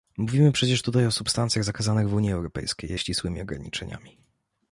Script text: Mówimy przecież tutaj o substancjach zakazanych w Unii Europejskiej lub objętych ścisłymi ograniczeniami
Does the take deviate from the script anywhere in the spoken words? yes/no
yes